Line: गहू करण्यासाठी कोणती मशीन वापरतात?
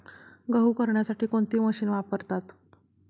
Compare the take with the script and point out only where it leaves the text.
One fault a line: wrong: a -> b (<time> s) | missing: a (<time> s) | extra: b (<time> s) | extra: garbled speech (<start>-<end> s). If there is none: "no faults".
no faults